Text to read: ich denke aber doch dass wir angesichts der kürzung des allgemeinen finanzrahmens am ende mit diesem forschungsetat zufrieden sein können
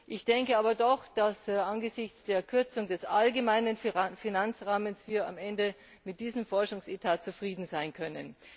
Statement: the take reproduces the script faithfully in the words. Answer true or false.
true